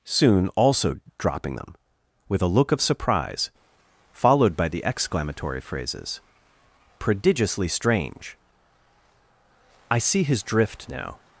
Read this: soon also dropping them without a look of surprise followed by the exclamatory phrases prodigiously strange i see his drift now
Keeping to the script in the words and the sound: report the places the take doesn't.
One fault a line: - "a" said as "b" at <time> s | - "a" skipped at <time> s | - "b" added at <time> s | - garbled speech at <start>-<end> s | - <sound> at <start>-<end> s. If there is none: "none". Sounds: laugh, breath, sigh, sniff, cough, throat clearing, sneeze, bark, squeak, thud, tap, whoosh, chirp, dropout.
- "without" said as "with" at 2.3 s